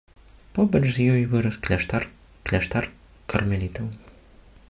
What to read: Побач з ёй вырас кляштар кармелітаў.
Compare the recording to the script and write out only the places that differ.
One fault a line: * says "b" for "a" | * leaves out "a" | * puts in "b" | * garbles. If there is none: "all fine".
* puts in "кляштар"